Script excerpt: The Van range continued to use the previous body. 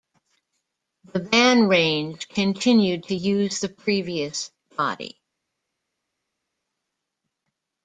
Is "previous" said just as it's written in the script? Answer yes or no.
yes